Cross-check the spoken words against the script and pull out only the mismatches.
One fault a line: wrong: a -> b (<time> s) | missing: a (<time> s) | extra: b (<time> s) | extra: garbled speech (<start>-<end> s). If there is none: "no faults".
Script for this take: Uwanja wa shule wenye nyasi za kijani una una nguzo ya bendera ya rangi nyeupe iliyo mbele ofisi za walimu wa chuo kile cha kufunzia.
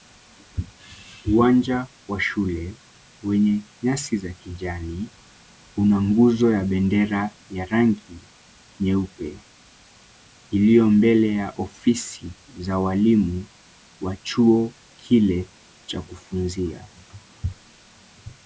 missing: una (6.0 s)
extra: ya (11.3 s)